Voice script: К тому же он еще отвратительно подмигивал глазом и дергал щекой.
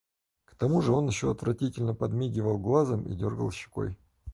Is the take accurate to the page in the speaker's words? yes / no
yes